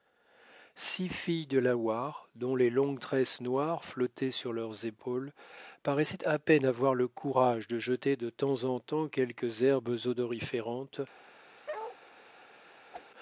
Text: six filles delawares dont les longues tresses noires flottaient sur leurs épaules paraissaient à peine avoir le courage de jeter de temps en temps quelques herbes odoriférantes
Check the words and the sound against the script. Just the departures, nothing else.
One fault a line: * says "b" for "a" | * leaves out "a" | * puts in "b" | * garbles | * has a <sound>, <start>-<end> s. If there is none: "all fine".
* has a bark, 11.7-12.0 s
* has a whoosh, 12.9-13.1 s